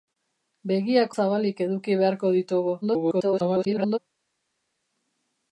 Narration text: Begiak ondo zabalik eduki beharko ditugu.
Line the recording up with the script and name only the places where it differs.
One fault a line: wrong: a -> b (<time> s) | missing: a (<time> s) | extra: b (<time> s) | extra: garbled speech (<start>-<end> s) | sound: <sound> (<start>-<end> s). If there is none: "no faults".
missing: ondo (1.1 s)
extra: garbled speech (2.8-4.0 s)